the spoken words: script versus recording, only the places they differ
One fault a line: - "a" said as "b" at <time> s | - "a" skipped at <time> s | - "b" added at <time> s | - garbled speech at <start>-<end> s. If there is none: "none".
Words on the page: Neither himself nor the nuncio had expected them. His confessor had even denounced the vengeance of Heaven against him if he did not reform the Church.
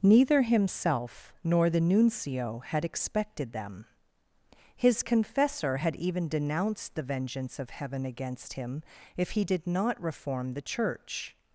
none